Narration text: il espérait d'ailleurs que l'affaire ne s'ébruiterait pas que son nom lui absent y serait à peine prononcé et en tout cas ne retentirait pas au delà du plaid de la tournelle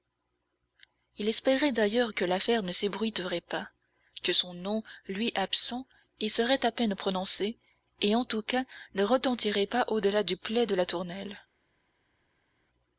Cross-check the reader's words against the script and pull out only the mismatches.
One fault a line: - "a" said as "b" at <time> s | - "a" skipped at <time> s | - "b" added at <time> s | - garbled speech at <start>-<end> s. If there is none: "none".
none